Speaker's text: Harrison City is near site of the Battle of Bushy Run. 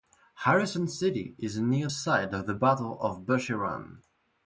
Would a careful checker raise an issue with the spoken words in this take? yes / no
no